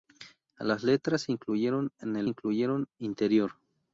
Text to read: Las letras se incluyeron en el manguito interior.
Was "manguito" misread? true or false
true